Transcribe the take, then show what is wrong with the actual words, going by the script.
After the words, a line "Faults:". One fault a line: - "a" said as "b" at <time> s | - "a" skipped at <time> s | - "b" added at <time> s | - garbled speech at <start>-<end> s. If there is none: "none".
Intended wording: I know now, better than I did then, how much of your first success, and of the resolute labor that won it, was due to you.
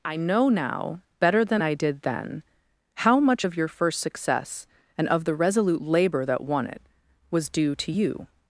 I know now, better than I did then, how much of your first success, and of the resolute labor that won it, was due to you.
Faults:
none